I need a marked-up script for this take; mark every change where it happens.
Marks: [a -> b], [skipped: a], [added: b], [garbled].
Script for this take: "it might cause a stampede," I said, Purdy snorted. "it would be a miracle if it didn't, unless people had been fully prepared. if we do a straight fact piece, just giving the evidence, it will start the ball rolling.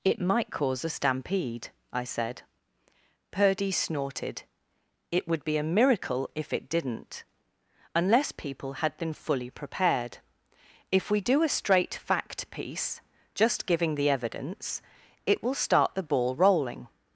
"it might cause a stampede," I said, Purdy snorted. "it would be a miracle if it didn't, unless people had been fully prepared. if we do a straight fact piece, just giving the evidence, it will start the ball rolling.